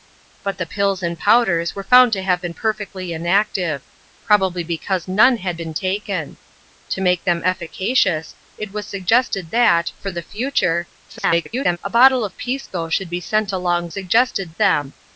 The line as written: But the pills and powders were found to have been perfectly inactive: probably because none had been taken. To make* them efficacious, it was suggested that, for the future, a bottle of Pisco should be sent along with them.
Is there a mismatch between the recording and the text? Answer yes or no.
yes